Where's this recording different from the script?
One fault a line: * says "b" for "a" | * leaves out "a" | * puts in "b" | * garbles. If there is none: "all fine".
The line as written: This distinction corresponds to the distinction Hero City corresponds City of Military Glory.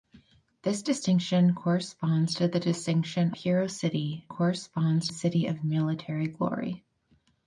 all fine